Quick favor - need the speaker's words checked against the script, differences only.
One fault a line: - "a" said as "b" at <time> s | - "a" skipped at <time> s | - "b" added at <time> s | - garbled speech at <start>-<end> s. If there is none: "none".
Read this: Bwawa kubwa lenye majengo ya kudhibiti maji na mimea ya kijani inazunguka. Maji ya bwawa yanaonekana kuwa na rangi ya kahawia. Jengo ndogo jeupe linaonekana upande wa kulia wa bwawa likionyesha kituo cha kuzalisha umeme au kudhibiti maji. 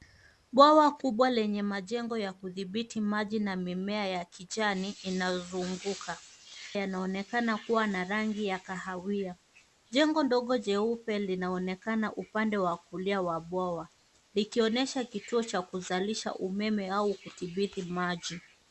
- "Maji ya bwawa" skipped at 6.2 s